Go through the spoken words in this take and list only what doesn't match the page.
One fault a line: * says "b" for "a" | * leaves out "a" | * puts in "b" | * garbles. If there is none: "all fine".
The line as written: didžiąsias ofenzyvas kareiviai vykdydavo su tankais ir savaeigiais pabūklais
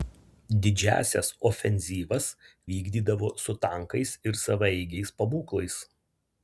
* leaves out "kareiviai"